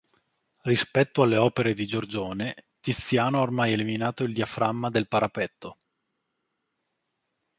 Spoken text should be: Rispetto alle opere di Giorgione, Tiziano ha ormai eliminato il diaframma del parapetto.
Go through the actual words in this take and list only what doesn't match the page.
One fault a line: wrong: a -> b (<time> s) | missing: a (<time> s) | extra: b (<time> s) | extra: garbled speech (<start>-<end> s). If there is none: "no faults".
no faults